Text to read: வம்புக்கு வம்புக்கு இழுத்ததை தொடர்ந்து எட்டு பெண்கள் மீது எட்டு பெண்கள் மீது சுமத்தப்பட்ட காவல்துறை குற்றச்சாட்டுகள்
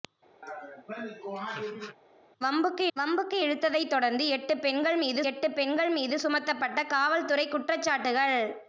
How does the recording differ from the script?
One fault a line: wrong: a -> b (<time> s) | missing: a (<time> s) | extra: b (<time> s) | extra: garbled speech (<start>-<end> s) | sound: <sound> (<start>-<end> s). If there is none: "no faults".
sound: laugh (0.4-2.0 s)